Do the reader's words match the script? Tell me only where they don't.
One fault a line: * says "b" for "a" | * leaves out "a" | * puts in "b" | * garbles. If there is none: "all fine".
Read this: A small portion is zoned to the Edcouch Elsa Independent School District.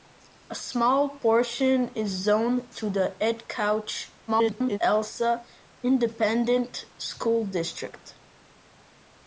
* garbles